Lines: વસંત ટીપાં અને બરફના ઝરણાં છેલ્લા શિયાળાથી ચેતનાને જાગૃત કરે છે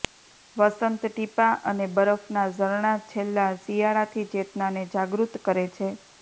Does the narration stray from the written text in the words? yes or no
no